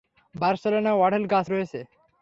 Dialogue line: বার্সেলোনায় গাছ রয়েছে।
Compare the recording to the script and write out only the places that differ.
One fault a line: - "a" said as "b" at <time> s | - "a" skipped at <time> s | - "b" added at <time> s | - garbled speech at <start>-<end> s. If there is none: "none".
- "অঢেল" added at 1.0 s